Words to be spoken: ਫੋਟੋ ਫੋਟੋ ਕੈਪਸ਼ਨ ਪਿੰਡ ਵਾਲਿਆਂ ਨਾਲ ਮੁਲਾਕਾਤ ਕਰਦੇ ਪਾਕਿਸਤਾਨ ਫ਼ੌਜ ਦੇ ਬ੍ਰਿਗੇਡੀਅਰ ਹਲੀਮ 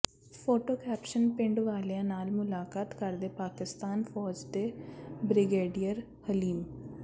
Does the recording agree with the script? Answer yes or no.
no